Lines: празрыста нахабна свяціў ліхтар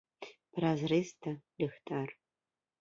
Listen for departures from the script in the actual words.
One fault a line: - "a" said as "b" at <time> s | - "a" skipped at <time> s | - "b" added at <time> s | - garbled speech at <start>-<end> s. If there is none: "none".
- "нахабна свяціў" skipped at 1.3 s